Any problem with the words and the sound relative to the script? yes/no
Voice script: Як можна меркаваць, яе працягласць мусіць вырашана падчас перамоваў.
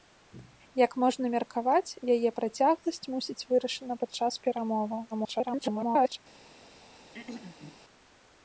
yes